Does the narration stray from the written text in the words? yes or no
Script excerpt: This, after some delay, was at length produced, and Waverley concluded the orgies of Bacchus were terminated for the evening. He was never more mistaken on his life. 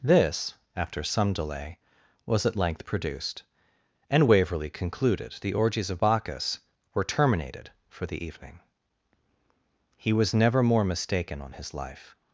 no